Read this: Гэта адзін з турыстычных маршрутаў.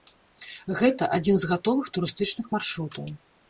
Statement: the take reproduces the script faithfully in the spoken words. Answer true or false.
false